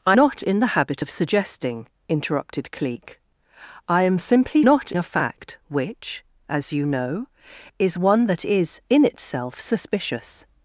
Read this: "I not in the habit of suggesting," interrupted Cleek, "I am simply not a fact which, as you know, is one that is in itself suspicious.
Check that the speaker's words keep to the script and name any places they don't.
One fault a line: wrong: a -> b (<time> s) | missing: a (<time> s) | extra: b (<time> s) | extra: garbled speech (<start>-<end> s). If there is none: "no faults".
no faults